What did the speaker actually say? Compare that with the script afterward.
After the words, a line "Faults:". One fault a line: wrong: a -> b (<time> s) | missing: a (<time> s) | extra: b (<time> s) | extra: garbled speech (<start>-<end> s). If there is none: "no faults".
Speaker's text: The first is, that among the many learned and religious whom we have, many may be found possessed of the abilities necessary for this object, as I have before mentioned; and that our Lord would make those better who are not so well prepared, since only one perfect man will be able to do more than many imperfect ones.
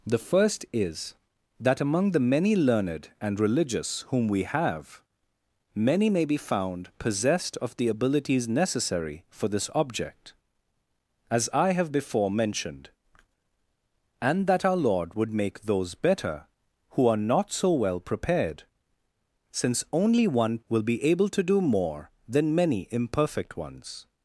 The first is, that among the many learned and religious whom we have, many may be found possessed of the abilities necessary for this object, as I have before mentioned; and that our Lord would make those better who are not so well prepared, since only one will be able to do more than many imperfect ones.
Faults:
missing: perfect man (20.6 s)